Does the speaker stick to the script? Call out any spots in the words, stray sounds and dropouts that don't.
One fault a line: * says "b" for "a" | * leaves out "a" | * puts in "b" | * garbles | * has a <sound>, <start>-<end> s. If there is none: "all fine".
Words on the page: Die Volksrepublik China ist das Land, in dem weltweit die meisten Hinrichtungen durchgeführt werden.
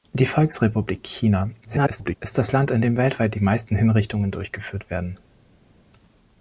* garbles